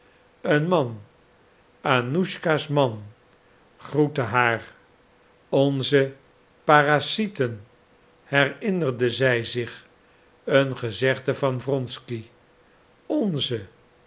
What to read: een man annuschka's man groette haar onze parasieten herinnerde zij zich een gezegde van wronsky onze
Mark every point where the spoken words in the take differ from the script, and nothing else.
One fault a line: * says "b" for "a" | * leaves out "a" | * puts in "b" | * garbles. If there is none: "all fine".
all fine